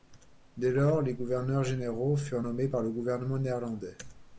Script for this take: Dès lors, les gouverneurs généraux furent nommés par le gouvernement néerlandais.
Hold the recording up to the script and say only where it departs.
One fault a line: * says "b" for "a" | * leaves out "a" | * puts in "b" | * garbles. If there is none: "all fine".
all fine